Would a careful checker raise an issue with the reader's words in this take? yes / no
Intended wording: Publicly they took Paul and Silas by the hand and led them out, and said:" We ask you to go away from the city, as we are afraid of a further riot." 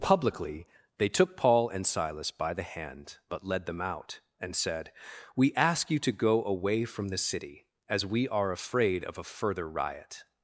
yes